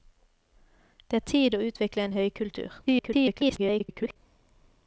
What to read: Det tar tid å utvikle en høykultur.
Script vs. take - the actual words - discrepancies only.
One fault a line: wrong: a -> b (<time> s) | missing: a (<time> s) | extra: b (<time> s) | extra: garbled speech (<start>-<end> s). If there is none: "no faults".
missing: tar (1.2 s)
extra: garbled speech (2.9-4.2 s)